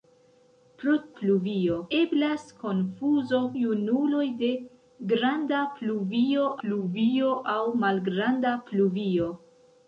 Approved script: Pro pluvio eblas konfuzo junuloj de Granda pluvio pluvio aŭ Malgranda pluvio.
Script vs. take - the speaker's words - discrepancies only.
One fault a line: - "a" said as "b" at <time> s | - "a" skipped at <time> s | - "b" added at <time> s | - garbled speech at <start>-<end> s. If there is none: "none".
none